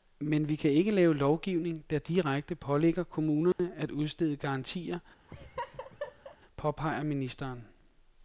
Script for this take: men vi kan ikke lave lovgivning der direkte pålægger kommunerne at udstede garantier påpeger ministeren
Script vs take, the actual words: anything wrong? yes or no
no